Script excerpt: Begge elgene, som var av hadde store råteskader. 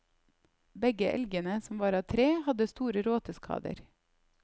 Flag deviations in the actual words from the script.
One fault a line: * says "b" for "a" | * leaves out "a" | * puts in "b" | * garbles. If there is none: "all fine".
* puts in "tre"